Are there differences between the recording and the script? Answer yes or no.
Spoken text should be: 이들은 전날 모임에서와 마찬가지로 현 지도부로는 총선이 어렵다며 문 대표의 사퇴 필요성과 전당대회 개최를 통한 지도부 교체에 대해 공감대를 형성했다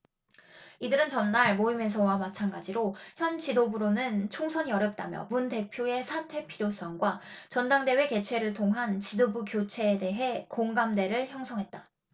no